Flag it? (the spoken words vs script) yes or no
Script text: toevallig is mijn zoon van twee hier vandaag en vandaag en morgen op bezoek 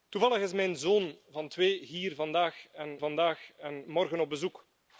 no